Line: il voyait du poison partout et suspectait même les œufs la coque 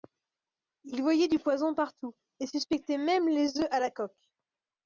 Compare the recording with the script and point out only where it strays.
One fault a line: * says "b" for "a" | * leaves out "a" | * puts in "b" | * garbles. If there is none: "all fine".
* puts in "à"